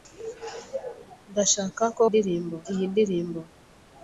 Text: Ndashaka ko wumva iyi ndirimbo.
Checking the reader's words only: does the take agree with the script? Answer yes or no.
no